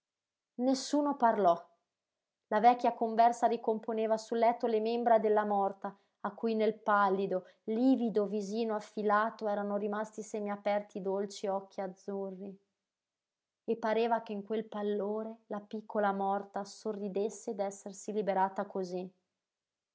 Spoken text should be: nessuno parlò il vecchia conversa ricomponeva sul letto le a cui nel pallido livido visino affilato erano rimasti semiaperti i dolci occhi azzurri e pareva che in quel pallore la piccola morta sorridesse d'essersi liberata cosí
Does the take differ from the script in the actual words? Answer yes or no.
yes